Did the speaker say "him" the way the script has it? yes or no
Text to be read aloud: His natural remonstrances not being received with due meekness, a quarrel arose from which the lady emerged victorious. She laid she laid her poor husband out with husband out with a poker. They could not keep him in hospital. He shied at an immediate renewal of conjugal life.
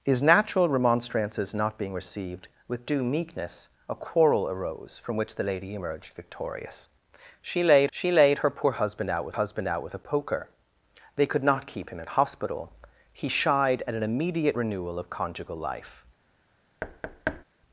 yes